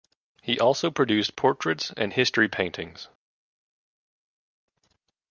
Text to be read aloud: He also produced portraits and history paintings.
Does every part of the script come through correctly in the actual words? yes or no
yes